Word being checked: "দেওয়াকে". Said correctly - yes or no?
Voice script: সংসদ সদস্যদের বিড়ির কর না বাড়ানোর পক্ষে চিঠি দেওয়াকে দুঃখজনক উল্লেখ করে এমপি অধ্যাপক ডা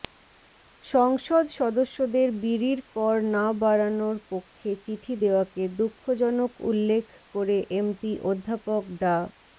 yes